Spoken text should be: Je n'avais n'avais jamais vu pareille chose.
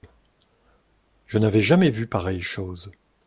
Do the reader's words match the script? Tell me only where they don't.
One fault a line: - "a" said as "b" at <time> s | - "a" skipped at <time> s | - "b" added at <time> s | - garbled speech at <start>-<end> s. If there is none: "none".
- "n'avais" skipped at 1.6 s